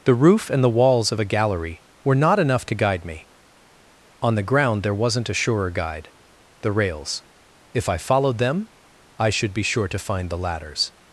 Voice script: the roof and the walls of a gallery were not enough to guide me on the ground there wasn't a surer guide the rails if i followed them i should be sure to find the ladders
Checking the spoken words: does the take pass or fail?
pass